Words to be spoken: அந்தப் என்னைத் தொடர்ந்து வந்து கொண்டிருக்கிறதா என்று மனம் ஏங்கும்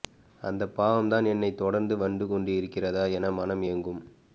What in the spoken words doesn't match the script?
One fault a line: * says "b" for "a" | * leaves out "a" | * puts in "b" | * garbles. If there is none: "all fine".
* puts in "பாவம்தான்"
* says "என" for "என்று"